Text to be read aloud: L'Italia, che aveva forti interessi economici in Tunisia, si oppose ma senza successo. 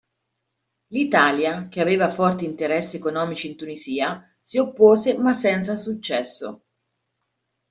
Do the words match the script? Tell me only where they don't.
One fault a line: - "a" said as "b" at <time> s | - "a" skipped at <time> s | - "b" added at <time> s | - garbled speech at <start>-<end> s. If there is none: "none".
none